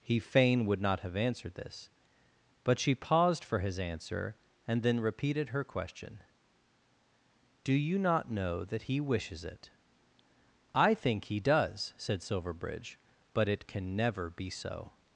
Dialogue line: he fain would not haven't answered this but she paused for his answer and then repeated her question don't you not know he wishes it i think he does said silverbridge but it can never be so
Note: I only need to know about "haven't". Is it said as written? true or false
false